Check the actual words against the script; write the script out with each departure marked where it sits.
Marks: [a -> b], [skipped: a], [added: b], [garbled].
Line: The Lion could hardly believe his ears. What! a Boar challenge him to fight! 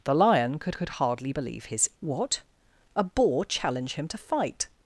The Lion could [added: could] hardly believe his [skipped: ears.] What! a Boar challenge him to fight!